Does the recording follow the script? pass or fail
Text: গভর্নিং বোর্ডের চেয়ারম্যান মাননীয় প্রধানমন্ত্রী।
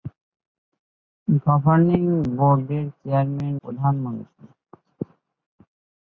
fail